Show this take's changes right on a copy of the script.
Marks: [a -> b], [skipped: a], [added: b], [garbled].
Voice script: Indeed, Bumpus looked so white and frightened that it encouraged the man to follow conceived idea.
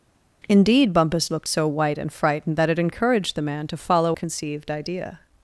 Indeed, Bumpus looked so white and frightened that it encouraged the man to follow conceived idea.